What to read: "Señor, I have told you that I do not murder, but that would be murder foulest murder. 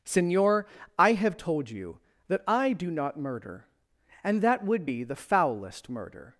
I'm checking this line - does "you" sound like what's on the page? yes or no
yes